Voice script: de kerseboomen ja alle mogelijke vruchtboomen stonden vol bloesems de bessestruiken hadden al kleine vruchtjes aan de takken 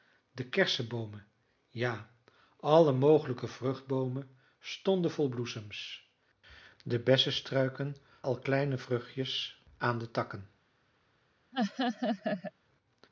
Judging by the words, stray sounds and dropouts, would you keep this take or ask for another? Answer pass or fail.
fail